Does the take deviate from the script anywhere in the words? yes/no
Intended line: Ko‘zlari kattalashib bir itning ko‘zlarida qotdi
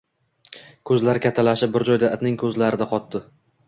yes